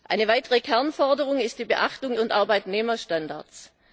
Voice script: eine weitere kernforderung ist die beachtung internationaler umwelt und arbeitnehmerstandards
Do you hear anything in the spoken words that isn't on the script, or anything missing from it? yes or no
yes